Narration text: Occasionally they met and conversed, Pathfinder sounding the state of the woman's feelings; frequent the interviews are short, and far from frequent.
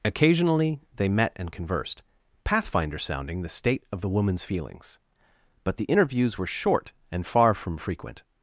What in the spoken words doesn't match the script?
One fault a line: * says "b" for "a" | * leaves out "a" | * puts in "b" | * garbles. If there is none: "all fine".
* says "but" for "frequent"
* says "were" for "are"